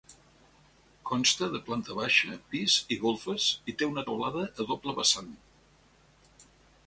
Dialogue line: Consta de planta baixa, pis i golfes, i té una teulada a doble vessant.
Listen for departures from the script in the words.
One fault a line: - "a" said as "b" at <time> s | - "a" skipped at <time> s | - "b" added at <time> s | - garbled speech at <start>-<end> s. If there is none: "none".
none